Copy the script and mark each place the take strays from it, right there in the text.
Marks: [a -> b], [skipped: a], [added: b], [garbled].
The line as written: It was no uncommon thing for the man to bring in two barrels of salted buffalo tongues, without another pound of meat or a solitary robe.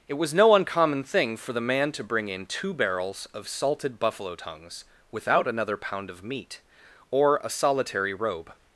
It was no uncommon thing for the man to bring in two barrels of salted buffalo tongues, without another pound of meat or a solitary robe.